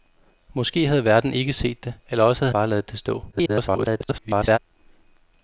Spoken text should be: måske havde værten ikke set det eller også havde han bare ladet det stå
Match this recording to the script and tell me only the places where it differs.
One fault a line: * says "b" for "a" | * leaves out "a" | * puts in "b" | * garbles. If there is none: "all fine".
* leaves out "han"
* garbles